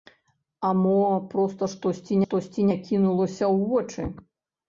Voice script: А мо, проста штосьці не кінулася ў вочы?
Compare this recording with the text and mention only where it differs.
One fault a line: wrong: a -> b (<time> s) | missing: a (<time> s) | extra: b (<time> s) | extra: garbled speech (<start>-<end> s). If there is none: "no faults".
extra: штосьці (2.2 s)